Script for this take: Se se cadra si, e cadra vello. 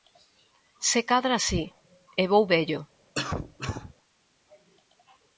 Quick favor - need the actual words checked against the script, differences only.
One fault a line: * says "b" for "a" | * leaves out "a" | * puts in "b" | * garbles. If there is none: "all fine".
* leaves out "se"
* says "vou" for "cadra"